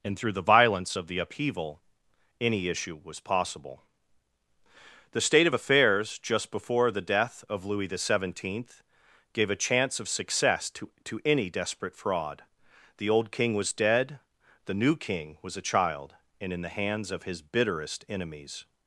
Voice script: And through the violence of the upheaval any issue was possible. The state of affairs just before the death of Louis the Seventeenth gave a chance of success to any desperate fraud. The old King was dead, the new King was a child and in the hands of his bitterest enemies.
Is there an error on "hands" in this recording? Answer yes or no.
no